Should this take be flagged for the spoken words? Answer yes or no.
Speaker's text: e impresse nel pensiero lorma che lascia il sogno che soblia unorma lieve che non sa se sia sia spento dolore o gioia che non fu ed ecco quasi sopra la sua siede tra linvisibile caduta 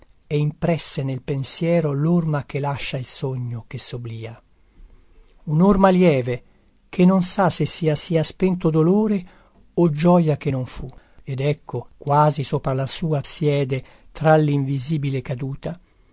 no